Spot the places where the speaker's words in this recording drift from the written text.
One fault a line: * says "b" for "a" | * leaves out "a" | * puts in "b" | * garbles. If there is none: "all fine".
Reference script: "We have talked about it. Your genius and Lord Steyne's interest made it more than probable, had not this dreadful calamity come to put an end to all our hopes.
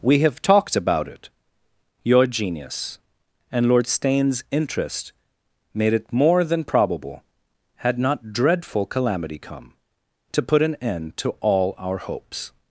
* leaves out "this"